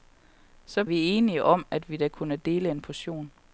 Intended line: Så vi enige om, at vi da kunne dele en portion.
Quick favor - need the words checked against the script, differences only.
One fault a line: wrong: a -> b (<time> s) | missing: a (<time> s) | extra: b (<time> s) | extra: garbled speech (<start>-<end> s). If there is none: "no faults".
no faults